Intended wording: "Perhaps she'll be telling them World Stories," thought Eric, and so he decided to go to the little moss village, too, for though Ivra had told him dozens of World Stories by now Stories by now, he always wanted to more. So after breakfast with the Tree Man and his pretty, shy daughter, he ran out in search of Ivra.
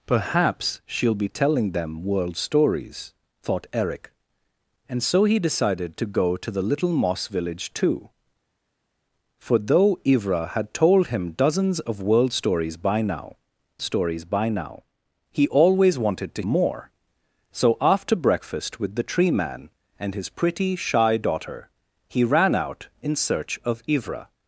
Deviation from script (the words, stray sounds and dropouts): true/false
false